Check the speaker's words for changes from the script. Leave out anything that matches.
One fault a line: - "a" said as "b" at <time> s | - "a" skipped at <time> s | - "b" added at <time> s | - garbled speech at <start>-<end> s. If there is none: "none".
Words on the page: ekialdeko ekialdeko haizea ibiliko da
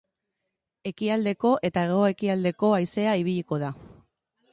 - "eta hego" added at 1.7 s